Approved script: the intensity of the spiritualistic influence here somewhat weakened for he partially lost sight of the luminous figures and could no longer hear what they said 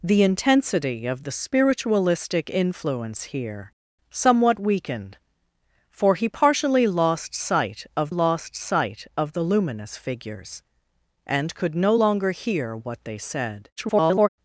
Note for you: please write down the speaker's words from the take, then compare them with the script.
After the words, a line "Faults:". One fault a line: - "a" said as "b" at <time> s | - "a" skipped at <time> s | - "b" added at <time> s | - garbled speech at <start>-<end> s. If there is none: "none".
the intensity of the spiritualistic influence here somewhat weakened for he partially lost sight of lost sight of the luminous figures and could no longer hear what they said [garbled]
Faults:
- "lost sight of" added at 8.1 s
- garbled speech at 13.8-14.3 s